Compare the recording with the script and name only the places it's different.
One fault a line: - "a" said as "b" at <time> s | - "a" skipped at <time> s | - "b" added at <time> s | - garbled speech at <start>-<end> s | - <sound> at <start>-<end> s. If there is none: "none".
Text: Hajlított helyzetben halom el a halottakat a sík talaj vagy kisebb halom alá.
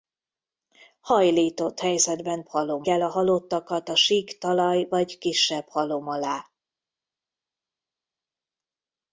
none